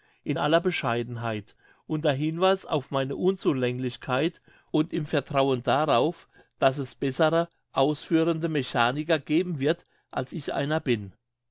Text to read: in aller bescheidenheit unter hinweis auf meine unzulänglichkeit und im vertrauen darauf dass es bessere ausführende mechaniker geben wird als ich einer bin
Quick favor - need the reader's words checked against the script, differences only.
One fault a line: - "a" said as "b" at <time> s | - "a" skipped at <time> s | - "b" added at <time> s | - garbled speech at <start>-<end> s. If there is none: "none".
none